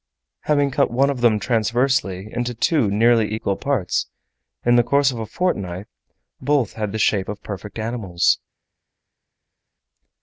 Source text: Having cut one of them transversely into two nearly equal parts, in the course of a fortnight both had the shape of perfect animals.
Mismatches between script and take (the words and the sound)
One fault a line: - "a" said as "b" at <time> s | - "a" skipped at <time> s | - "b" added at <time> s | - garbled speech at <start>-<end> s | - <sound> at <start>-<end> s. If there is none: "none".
none